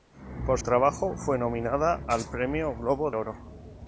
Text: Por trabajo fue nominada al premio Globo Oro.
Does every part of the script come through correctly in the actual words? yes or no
yes